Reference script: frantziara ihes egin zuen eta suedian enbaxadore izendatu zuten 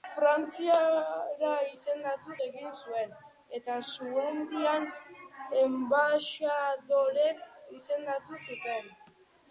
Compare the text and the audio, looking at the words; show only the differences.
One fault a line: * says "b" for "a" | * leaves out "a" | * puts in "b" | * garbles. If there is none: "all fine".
* says "izendatu" for "ihes"